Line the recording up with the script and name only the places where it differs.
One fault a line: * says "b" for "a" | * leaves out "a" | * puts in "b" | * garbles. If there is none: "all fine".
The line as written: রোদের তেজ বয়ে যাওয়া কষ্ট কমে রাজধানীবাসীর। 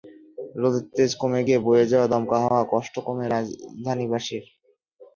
* puts in "কমে গিয়ে"
* puts in "দমকা হাওয়ায়"